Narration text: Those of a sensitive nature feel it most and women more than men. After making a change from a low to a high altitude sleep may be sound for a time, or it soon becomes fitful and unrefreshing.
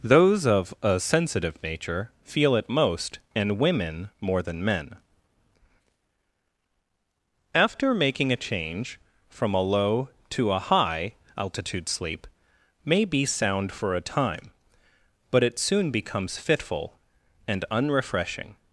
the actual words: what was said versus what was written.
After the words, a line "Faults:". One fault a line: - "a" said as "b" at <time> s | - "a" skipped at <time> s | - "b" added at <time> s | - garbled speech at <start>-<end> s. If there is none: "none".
Those of a sensitive nature feel it most and women more than men. After making a change from a low to a high altitude sleep may be sound for a time, but it soon becomes fitful and unrefreshing.
Faults:
- "or" said as "but" at 15.3 s